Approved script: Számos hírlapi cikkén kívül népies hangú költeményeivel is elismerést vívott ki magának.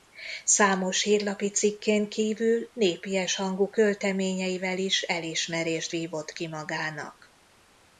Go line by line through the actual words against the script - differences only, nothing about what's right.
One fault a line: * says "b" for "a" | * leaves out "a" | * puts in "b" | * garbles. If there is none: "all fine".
all fine